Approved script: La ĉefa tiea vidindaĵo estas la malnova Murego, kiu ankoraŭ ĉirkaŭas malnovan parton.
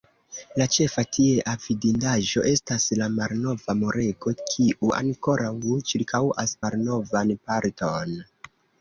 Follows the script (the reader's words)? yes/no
yes